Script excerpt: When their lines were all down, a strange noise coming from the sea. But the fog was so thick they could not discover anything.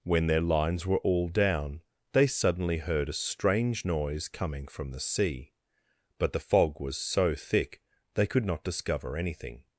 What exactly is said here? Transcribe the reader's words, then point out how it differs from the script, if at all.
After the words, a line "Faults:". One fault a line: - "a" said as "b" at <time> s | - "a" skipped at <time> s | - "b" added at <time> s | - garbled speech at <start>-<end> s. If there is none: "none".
When their lines were all down, they suddenly heard a strange noise coming from the sea. But the fog was so thick they could not discover anything.
Faults:
- "they suddenly heard" added at 2.1 s